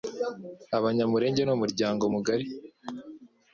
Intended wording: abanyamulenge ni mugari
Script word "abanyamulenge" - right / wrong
right